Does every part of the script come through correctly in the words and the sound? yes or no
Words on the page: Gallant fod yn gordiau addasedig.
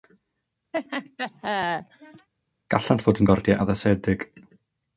no